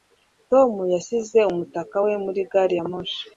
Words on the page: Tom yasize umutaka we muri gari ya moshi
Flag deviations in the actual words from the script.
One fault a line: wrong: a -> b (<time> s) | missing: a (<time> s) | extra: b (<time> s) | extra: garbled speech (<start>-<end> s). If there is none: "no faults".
no faults